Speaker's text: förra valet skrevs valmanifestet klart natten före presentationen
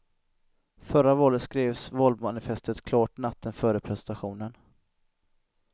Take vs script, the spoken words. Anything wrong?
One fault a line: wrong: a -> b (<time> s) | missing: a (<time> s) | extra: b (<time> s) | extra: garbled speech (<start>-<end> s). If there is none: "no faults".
no faults